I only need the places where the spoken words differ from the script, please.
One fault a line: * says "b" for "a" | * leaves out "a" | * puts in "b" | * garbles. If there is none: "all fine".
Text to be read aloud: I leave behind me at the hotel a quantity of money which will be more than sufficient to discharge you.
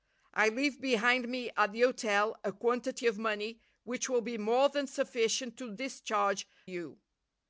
all fine